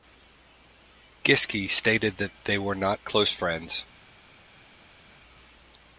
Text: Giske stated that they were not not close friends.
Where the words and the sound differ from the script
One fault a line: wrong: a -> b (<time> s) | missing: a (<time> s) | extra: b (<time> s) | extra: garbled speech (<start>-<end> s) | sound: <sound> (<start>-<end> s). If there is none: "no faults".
missing: not (3.0 s)